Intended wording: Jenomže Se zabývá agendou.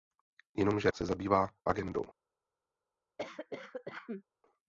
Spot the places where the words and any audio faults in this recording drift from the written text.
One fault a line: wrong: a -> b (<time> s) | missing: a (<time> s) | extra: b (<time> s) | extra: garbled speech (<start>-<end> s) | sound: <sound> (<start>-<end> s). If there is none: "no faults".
sound: cough (3.2-4.2 s)